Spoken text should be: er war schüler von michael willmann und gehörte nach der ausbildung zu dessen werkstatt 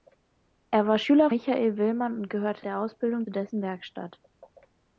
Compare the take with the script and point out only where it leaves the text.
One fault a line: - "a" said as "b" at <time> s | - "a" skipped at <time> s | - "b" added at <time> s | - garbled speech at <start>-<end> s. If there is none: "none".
- "von" skipped at 1.3 s
- "nach" skipped at 2.7 s
- "zu" skipped at 3.3 s